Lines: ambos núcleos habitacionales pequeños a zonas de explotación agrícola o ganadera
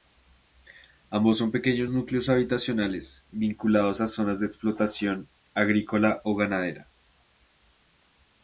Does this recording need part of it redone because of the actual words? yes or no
yes